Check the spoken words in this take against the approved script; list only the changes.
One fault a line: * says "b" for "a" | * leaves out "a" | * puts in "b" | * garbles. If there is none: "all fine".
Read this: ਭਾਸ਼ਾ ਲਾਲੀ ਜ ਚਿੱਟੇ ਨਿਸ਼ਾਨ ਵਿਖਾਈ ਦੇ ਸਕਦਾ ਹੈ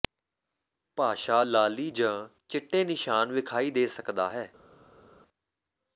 all fine